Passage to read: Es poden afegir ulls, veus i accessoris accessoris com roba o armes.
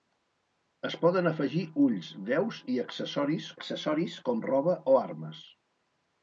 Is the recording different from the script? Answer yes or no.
no